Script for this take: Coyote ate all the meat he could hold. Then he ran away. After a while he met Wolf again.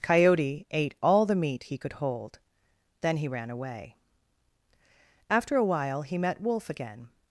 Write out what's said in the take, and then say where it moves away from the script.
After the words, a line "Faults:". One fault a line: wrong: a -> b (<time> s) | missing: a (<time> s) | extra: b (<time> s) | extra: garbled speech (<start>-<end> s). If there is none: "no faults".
Coyote ate all the meat he could hold. Then he ran away. After a while he met Wolf again.
Faults:
no faults